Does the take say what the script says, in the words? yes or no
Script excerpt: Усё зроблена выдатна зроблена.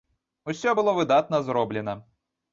no